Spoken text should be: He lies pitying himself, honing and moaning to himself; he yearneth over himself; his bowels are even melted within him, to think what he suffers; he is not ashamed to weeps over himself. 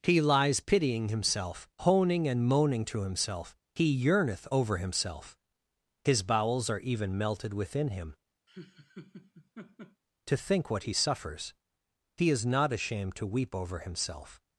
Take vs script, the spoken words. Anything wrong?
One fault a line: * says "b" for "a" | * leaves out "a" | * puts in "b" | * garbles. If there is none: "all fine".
* says "weep" for "weeps"